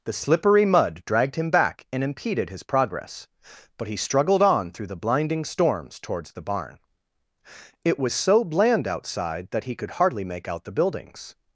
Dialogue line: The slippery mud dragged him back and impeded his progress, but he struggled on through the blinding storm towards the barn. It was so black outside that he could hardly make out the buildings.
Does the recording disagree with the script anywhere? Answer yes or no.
yes